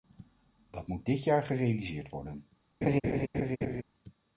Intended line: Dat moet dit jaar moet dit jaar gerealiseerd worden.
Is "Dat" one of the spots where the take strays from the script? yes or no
no